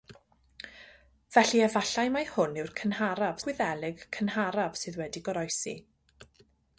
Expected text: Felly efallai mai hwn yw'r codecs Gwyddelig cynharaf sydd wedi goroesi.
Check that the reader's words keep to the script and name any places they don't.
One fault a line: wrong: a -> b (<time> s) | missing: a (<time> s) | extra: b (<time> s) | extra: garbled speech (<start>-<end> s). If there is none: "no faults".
wrong: codecs -> cynharaf (2.8 s)